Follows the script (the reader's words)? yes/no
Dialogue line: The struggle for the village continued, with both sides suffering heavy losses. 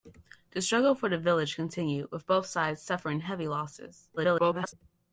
no